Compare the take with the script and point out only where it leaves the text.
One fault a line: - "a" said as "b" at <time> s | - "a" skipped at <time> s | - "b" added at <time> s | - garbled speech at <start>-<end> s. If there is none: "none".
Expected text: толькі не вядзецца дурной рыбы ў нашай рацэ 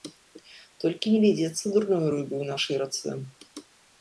none